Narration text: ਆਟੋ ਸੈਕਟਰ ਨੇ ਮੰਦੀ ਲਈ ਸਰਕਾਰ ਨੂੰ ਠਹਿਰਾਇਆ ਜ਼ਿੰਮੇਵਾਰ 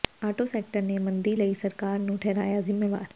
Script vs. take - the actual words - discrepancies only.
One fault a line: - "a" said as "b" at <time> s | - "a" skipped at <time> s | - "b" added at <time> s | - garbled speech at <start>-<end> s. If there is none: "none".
none